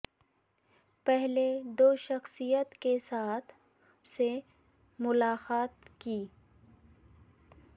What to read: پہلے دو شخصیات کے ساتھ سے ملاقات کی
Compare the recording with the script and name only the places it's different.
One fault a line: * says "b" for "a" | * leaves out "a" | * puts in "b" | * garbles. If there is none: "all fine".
all fine